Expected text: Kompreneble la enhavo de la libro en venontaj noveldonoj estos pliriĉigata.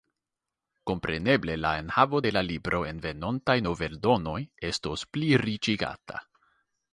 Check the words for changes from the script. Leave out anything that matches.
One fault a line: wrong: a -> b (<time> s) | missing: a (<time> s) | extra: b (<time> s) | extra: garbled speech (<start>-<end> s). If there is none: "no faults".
no faults